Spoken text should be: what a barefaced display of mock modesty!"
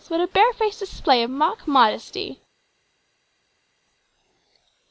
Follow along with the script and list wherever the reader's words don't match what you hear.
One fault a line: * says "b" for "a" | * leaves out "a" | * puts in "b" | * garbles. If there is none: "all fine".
all fine